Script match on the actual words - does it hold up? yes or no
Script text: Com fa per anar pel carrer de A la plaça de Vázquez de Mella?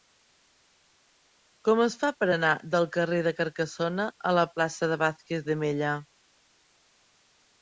no